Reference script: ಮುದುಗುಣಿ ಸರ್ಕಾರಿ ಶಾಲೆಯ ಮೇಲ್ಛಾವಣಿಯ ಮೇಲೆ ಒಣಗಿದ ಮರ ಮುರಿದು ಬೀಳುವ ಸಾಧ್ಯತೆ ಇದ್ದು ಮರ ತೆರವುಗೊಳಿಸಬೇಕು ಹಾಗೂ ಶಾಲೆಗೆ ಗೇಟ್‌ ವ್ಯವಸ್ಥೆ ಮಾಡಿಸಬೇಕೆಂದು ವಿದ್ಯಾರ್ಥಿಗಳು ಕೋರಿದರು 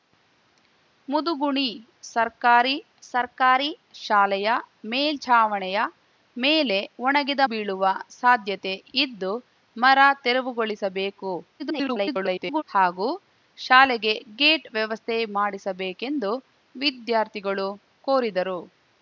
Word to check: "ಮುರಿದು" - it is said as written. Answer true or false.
false